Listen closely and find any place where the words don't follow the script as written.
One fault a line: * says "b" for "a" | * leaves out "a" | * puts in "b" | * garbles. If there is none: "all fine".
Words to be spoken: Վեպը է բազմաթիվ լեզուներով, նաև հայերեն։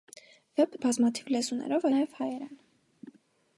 all fine